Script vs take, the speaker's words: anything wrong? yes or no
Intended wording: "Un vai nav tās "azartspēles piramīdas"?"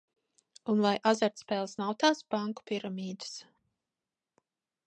yes